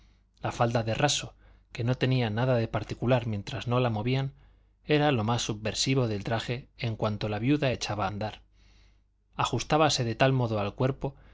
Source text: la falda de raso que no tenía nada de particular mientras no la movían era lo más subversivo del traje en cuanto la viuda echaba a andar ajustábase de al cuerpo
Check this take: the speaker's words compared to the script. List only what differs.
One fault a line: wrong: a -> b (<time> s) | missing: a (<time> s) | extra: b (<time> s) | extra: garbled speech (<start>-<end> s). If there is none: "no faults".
extra: tal modo (10.2 s)